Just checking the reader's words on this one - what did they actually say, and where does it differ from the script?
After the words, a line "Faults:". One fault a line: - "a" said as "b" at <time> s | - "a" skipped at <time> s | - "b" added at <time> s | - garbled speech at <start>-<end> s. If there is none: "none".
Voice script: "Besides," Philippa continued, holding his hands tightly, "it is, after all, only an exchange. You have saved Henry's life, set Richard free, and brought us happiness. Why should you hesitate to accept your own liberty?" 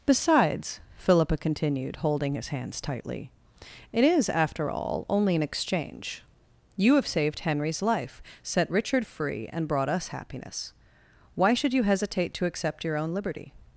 "Besides," Philippa continued, holding his hands tightly, "it is, after all, only an exchange. You have saved Henry's life, set Richard free, and brought us happiness. Why should you hesitate to accept your own liberty?"
Faults:
none